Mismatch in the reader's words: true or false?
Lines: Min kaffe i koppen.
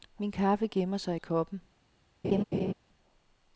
true